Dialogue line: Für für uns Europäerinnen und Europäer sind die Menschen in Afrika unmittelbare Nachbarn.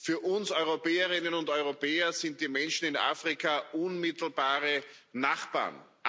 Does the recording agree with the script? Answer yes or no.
no